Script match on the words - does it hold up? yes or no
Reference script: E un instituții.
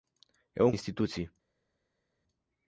yes